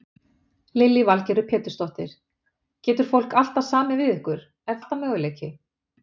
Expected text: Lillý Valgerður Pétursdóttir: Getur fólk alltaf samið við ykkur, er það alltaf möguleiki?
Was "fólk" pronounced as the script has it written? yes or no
yes